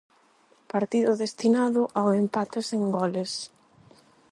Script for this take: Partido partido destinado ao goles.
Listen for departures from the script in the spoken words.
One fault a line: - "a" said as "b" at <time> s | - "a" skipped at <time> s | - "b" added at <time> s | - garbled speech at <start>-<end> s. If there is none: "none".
- "partido" skipped at 1.1 s
- "empate sen" added at 2.2 s